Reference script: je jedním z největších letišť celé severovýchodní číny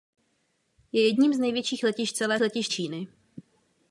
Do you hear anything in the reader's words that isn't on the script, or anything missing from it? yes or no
yes